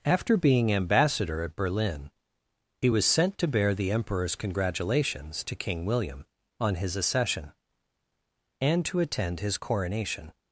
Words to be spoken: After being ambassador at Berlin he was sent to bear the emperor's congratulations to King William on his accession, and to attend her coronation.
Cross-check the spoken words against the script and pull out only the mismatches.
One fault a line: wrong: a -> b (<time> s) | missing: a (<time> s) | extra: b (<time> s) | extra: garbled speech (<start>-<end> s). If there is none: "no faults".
wrong: her -> his (9.4 s)